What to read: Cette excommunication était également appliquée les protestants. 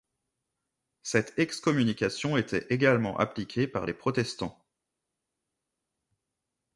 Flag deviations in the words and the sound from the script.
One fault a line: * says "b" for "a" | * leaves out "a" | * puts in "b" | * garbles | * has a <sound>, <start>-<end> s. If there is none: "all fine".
* puts in "par"